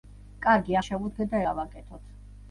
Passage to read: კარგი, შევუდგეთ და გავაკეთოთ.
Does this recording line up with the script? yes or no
yes